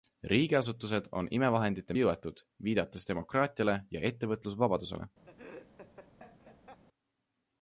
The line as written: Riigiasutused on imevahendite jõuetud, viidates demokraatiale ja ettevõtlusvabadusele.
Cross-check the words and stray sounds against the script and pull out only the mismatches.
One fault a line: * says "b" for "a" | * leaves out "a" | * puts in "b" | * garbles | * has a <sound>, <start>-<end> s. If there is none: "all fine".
* has a laugh, 5.3-6.8 s